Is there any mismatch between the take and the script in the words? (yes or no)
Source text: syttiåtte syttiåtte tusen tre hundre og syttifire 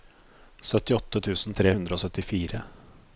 yes